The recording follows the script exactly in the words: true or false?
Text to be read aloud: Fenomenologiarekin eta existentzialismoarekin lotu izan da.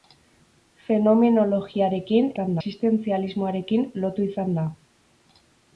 false